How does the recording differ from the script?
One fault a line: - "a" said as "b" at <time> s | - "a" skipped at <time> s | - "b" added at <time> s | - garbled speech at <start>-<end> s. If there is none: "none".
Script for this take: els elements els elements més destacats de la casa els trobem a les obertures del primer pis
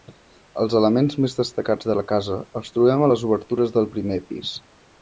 - "els elements" skipped at 1.2 s